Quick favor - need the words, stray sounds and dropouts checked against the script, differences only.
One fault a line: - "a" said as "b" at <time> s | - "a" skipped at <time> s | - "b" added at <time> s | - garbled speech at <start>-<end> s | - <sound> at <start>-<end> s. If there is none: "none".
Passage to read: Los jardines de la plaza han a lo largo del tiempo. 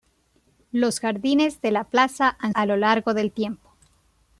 none